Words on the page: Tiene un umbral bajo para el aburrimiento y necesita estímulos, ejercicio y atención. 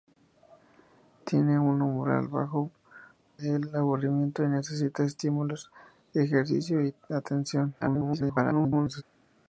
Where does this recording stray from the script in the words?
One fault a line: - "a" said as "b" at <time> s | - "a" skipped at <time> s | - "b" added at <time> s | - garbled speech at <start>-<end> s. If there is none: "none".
- "para" skipped at 2.7 s
- garbled speech at 7.8-9.0 s